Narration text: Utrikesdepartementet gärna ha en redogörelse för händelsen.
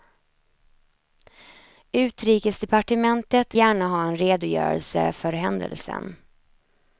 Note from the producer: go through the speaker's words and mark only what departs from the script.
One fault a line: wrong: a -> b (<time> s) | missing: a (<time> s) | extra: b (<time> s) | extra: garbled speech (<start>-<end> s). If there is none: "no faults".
no faults